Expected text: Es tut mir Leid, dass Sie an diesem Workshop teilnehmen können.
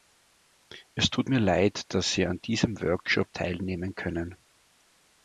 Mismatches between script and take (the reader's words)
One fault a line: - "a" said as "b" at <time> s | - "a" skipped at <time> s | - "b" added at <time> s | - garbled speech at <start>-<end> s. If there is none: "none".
none